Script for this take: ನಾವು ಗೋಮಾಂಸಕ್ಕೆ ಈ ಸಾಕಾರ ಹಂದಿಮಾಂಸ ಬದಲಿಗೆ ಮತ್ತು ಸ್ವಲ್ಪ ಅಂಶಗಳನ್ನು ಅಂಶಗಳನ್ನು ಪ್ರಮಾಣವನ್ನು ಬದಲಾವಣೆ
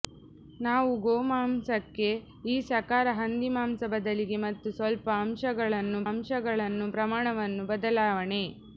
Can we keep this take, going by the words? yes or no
yes